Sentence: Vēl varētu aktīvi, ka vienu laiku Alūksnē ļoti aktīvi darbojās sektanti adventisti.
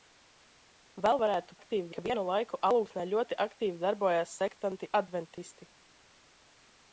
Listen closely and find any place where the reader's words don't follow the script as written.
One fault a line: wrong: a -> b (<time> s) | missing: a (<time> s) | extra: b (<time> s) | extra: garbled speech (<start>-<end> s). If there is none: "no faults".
no faults